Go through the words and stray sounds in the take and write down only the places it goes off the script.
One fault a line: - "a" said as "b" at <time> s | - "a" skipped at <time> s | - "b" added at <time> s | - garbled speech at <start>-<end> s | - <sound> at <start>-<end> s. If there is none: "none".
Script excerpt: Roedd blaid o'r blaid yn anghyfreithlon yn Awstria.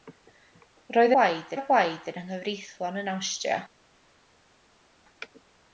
none